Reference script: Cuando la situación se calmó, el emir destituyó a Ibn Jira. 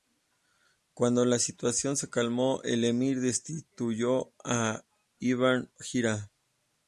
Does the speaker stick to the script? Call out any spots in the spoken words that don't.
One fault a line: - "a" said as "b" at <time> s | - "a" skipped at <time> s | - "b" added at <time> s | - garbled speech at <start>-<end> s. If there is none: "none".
none